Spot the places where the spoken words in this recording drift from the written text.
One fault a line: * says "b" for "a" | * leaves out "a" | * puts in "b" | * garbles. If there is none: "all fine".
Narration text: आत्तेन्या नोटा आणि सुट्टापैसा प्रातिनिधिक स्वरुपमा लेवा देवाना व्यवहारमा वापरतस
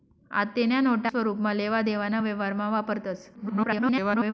* leaves out "आणि सुट्टापैसा प्रातिनिधिक"
* garbles